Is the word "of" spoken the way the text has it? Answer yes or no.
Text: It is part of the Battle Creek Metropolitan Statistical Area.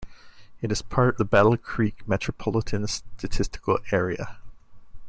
no